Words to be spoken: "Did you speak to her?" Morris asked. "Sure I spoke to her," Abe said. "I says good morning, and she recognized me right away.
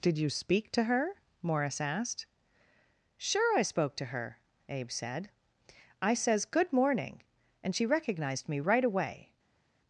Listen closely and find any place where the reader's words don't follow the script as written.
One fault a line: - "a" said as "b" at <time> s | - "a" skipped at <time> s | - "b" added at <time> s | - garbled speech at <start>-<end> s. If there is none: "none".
none